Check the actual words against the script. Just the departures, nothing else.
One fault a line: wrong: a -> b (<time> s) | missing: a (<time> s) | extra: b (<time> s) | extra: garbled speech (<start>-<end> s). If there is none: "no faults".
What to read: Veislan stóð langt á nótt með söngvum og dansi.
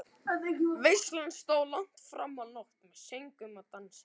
extra: fram (2.1 s)